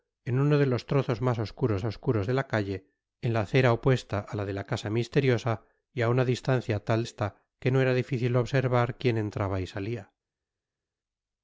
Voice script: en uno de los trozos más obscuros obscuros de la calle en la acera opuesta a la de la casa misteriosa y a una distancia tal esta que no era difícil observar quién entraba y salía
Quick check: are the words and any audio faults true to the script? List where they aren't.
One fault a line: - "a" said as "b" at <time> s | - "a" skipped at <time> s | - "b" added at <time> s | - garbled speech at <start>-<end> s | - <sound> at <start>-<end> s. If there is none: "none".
none